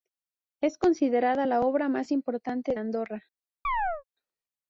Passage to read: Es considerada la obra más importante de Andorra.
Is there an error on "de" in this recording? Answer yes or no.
yes